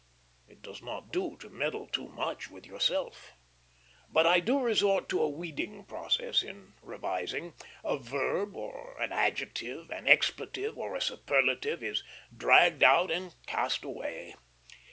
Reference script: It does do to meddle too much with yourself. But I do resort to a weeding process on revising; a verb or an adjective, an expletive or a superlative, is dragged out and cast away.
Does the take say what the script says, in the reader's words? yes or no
no